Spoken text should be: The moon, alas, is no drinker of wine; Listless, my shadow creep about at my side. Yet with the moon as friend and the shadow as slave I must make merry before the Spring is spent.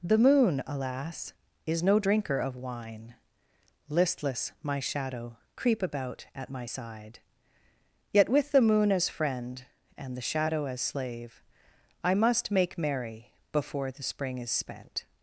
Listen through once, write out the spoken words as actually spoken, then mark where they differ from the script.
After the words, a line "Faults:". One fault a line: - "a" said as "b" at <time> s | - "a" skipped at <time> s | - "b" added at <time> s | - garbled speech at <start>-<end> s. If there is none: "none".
The moon, alas, is no drinker of wine; Listless, my shadow creep about at my side. Yet with the moon as friend and the shadow as slave I must make merry before the Spring is spent.
Faults:
none